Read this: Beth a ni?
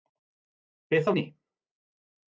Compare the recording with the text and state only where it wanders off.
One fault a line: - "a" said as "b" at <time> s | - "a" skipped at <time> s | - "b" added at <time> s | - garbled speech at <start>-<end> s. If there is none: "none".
none